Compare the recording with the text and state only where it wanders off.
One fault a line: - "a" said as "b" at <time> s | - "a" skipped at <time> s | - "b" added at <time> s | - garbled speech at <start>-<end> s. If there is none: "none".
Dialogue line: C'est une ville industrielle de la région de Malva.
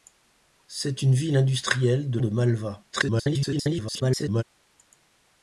- "la région" skipped at 2.2 s
- garbled speech at 2.9-4.4 s